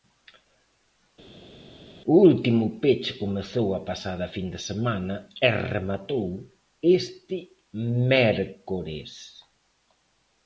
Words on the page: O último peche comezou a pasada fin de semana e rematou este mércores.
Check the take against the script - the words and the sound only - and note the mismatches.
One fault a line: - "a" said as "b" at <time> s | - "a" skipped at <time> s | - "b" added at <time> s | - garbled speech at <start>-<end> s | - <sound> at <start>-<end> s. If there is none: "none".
none